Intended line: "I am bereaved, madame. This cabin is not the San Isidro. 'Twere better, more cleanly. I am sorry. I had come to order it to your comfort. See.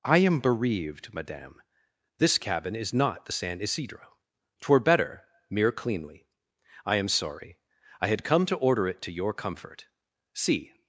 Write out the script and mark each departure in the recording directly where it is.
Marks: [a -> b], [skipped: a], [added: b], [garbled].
"I am bereaved, madame. This cabin is not the San Isidro. 'Twere better, [more -> mere] cleanly. I am sorry. I had come to order it to your comfort. See.